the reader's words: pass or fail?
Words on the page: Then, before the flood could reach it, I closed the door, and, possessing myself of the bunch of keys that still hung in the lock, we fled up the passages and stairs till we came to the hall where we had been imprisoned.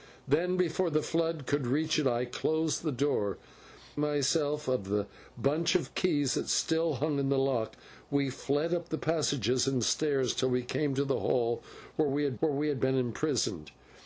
fail